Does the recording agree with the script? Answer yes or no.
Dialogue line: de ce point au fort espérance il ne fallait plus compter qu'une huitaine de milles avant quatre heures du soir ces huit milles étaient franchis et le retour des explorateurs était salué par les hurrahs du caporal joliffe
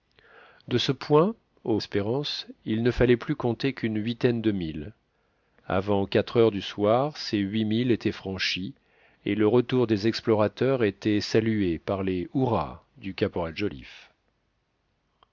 no